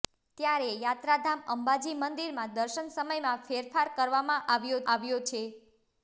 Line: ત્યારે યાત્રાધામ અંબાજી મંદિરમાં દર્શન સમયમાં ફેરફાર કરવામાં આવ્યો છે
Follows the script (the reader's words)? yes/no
no